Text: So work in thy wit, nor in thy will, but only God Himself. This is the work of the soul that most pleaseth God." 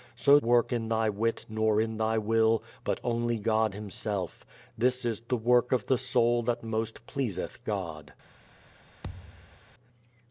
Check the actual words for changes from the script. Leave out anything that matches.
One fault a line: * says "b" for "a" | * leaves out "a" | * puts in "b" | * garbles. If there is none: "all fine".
all fine